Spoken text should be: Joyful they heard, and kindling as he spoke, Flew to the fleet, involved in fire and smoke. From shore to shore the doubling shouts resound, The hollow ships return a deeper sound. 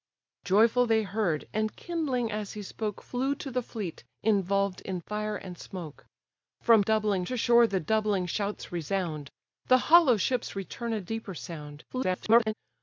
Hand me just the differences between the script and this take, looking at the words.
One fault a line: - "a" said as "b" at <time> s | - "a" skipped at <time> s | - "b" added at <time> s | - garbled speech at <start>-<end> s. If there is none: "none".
- "shore" said as "doubling" at 6.8 s
- garbled speech at 11.9-12.5 s